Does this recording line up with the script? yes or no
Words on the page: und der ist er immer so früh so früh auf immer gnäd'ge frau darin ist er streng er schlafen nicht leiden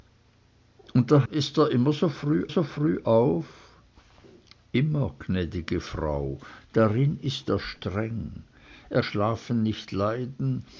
yes